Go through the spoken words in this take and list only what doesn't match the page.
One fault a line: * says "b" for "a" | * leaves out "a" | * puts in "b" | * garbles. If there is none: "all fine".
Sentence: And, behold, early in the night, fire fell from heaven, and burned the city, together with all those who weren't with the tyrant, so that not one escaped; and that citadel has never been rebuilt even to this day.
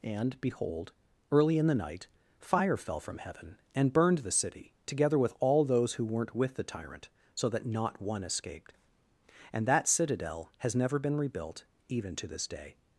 all fine